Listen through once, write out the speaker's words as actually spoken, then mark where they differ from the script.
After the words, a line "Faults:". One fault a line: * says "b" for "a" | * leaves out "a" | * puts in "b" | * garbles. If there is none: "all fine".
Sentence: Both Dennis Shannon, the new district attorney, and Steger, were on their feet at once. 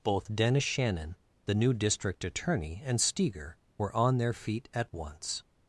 Both Dennis Shannon, the new district attorney, and Steger, were on their feet at once.
Faults:
all fine